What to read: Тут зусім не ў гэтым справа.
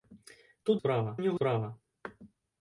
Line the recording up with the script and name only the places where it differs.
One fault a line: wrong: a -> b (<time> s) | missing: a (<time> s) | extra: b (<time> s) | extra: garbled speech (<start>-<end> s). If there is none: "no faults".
wrong: зусім -> справа (0.8 s)
missing: гэтым (1.4 s)